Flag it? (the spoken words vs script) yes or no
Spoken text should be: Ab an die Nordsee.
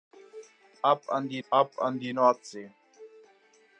yes